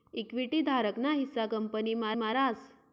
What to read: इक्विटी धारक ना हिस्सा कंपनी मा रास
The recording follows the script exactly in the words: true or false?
false